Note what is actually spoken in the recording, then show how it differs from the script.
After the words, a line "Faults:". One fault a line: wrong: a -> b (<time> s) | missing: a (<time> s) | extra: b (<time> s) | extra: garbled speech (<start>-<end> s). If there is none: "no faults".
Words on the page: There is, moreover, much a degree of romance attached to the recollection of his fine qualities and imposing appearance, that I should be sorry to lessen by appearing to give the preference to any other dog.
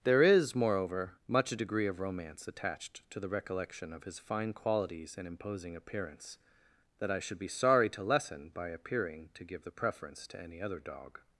There is, moreover, much a degree of romance attached to the recollection of his fine qualities and imposing appearance, that I should be sorry to lessen by appearing to give the preference to any other dog.
Faults:
no faults